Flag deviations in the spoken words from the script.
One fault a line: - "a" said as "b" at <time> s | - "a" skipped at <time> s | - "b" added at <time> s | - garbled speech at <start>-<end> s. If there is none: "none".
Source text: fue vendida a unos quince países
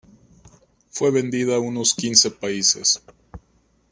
none